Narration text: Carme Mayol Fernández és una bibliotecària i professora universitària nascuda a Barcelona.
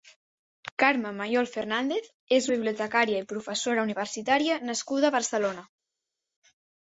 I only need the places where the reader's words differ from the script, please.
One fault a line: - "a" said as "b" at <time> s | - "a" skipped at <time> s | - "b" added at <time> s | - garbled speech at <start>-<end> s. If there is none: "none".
- "una" skipped at 2.5 s